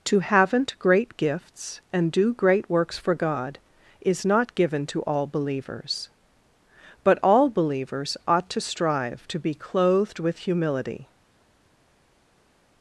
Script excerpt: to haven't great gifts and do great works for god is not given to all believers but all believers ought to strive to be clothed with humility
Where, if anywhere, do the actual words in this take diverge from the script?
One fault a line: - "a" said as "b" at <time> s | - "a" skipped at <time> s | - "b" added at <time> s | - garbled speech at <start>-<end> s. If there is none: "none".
none